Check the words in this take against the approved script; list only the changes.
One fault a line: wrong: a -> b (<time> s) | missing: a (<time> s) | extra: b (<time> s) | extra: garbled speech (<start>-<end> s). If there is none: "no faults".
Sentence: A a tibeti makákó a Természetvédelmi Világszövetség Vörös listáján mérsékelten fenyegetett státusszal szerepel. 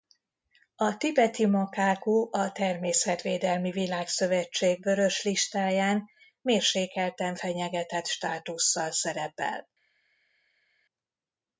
missing: a (1.0 s)